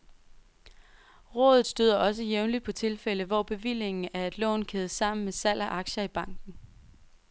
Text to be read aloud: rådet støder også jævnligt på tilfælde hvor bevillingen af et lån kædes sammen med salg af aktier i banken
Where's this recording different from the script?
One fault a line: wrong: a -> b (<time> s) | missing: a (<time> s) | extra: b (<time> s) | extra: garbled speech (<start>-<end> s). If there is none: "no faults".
no faults